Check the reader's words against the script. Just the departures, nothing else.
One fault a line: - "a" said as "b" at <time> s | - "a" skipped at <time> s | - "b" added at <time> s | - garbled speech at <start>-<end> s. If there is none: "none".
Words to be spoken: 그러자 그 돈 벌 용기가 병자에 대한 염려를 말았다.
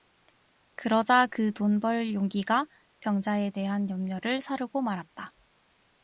- "사르고" added at 4.4 s